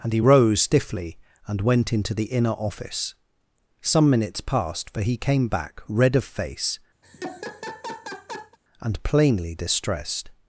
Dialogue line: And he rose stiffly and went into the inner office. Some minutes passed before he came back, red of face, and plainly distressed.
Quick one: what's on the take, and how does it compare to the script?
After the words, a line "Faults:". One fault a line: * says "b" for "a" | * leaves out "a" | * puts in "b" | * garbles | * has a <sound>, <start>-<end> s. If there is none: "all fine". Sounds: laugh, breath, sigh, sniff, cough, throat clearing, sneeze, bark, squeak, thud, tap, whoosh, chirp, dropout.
And he rose stiffly and went into the inner office. Some minutes passed for he came back, red of face, and plainly distressed.
Faults:
* says "for" for "before"
* has a laugh, 7.0-8.6 s